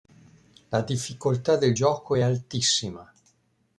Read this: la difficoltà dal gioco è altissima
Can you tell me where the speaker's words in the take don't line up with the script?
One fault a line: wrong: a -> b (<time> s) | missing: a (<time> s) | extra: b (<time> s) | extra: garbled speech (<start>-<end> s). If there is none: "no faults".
wrong: dal -> del (1.6 s)